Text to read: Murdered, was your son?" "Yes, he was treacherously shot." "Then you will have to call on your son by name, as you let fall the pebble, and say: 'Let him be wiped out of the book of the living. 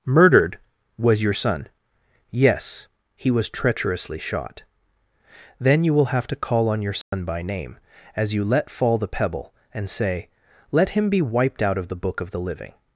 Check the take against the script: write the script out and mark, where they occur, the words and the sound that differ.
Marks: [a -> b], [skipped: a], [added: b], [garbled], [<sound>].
Murdered, was your son?" "Yes, he was treacherously shot." "Then you will have to call on your son [dropout] by name, as you let fall the pebble, and say: 'Let him be wiped out of the book of the living.